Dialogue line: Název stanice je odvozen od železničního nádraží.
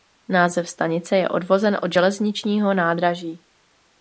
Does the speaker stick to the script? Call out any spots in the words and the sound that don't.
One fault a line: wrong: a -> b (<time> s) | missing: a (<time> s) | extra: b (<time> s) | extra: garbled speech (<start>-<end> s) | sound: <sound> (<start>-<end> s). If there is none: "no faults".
no faults